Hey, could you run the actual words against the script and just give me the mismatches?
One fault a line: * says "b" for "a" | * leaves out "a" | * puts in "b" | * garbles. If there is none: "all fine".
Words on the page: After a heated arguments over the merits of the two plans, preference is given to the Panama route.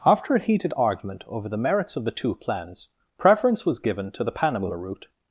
* says "argument" for "arguments"
* says "was" for "is"